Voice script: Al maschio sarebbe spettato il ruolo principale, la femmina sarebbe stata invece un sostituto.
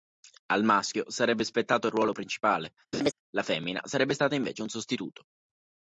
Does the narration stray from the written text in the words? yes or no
no